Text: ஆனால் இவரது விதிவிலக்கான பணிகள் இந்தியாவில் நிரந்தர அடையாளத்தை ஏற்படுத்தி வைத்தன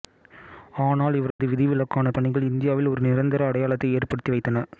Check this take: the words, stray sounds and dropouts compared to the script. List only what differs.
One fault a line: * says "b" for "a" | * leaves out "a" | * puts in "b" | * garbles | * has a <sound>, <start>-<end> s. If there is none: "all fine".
* has a dropout, 1.3-1.4 s
* puts in "ஒரு"